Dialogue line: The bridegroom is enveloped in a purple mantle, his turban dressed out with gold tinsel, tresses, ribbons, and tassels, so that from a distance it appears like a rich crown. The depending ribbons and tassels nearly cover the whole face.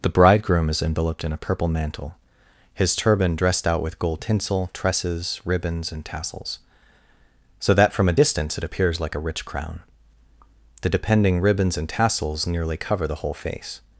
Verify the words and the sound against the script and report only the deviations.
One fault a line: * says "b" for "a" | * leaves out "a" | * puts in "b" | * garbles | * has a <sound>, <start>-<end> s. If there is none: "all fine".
all fine